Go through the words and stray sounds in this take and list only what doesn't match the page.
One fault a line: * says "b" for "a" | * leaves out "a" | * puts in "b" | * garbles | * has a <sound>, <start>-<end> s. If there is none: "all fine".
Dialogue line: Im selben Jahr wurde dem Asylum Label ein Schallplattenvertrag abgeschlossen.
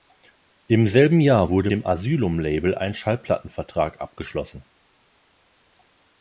all fine